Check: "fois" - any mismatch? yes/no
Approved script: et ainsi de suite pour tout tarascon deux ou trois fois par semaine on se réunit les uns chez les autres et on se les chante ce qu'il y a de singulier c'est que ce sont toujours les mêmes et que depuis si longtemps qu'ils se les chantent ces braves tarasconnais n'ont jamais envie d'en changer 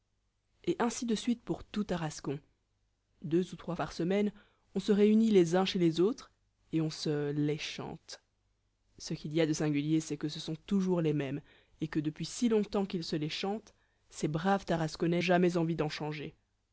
yes